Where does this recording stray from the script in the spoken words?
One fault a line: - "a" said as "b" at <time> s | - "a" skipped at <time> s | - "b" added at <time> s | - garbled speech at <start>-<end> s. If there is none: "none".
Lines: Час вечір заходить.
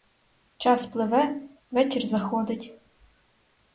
- "пливе" added at 0.8 s